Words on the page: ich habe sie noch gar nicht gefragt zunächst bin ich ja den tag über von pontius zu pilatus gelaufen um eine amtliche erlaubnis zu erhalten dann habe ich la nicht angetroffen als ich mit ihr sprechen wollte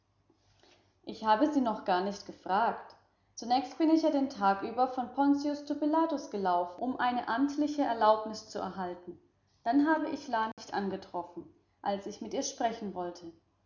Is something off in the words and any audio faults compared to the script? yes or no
yes